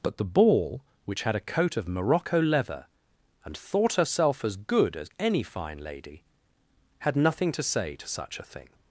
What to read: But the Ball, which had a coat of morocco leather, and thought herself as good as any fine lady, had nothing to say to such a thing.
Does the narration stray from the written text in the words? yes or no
no